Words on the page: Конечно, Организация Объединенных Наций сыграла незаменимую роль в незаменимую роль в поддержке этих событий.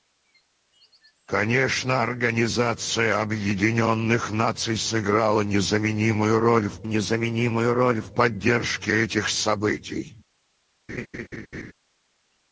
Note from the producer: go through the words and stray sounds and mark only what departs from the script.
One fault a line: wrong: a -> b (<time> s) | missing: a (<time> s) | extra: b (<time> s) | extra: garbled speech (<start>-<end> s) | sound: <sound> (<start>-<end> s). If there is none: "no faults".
sound: laugh (10.9-11.7 s)